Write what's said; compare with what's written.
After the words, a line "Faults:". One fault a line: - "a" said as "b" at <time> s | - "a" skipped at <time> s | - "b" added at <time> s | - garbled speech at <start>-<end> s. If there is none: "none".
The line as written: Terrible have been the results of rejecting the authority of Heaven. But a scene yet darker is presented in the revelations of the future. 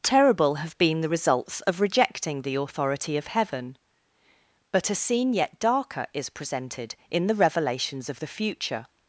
Terrible have been the results of rejecting the authority of Heaven. But a scene yet darker is presented in the revelations of the future.
Faults:
none